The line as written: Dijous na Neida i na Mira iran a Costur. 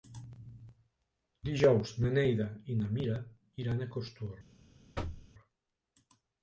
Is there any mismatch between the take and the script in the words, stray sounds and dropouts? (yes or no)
yes